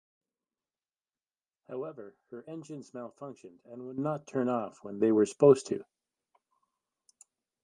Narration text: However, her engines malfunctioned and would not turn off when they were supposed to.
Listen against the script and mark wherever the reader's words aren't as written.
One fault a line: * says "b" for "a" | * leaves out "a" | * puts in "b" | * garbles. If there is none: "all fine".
all fine